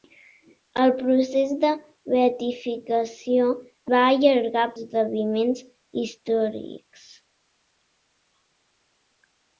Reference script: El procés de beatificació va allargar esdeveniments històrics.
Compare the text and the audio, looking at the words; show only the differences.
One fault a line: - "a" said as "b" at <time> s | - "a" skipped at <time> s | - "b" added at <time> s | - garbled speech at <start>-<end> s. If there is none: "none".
none